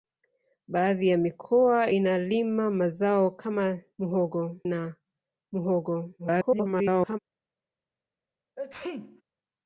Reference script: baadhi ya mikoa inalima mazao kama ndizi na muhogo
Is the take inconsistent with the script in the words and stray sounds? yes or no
yes